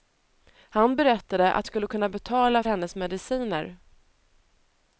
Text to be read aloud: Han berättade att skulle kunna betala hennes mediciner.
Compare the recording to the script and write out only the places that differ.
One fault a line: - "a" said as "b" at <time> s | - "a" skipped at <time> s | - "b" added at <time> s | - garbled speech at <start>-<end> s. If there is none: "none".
none